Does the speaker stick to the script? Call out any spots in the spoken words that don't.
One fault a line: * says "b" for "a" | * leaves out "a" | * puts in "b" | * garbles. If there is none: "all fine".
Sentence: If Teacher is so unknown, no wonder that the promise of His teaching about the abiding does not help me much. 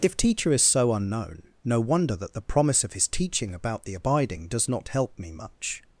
all fine